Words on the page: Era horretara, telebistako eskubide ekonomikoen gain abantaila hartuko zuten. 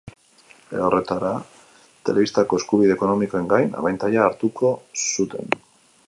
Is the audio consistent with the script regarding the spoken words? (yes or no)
yes